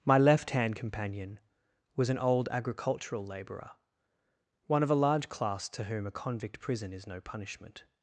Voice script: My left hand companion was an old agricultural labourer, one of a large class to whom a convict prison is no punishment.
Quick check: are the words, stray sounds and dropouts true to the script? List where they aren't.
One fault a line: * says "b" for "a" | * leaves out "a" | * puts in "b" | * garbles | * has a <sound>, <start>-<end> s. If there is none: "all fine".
all fine